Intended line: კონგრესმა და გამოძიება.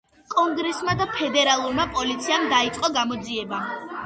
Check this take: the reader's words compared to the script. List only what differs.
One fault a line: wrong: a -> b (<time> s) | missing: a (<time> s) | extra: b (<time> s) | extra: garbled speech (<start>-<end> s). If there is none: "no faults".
extra: ფედერალურმა პოლიციამ დაიწყო (1.2 s)